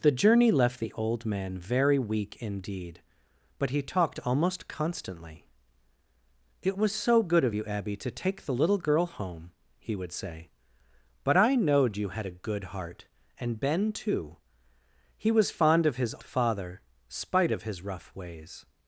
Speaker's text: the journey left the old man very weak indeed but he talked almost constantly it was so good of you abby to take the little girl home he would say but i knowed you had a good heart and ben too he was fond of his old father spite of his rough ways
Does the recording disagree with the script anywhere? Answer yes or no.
yes